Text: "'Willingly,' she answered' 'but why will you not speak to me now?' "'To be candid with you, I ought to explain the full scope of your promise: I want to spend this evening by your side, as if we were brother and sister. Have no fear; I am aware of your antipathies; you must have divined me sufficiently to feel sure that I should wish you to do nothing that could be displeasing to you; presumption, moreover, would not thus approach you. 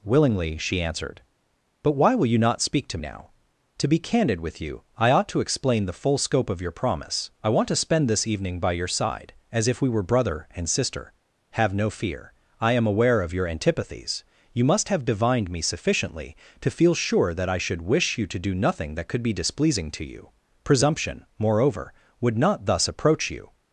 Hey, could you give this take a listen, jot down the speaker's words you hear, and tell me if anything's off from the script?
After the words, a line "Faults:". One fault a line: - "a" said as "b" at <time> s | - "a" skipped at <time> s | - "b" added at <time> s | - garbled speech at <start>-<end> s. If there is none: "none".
"'Willingly,' she answered' 'but why will you not speak to now?' "'To be candid with you, I ought to explain the full scope of your promise: I want to spend this evening by your side, as if we were brother and sister. Have no fear; I am aware of your antipathies; you must have divined me sufficiently to feel sure that I should wish you to do nothing that could be displeasing to you; presumption, moreover, would not thus approach you.
Faults:
- "me" skipped at 3.0 s